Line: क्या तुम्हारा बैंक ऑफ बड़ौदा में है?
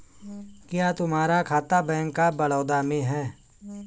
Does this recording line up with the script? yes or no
no